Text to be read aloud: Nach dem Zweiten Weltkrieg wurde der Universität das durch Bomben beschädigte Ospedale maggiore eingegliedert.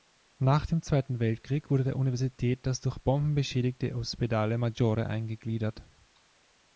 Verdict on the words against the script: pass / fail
pass